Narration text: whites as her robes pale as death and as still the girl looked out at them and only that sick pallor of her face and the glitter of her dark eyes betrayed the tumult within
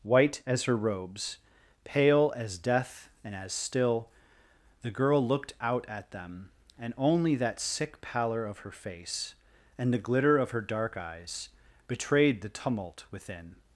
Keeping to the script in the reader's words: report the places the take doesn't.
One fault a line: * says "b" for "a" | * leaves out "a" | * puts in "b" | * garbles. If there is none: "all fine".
* says "white" for "whites"